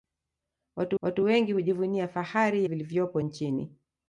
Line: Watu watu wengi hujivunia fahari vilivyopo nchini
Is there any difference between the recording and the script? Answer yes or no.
no